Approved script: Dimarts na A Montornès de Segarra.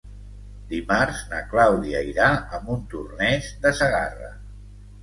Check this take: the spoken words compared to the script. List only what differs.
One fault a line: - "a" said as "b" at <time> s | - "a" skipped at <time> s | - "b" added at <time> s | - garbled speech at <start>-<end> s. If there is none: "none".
- "Clàudia irà" added at 1.5 s